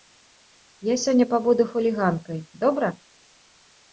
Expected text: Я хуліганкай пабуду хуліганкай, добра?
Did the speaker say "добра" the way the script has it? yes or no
yes